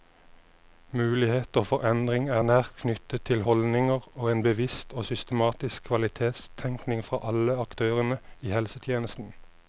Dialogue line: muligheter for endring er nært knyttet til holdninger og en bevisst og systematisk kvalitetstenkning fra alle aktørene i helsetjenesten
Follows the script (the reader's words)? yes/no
yes